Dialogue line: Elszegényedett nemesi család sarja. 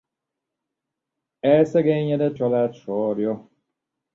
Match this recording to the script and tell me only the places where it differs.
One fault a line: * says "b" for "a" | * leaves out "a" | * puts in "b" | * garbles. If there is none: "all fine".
* leaves out "nemesi"